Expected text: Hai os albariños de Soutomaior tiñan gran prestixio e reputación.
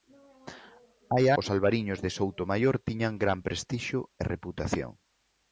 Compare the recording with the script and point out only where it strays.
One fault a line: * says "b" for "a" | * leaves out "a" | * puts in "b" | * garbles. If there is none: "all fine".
all fine